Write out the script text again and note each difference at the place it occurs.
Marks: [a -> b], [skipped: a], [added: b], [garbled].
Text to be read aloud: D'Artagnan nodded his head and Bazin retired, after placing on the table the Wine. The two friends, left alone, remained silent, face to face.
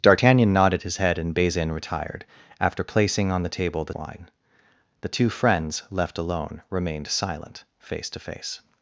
D'Artagnan nodded his head and Bazin retired, after placing on the table the Wine. The two friends, left alone, remained silent, face to face.